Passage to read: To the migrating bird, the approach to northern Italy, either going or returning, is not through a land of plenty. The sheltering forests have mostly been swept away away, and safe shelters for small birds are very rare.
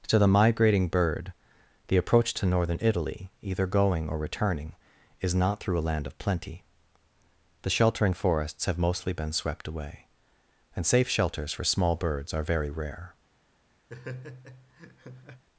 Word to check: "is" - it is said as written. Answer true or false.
true